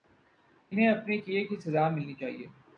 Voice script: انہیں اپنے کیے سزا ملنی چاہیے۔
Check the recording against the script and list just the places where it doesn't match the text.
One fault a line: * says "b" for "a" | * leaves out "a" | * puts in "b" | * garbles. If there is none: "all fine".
* puts in "کی"